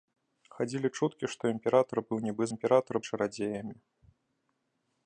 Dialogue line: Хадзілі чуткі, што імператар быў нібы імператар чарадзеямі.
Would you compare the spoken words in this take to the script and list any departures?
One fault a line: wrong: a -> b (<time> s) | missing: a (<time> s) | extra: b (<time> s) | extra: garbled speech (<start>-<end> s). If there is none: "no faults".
no faults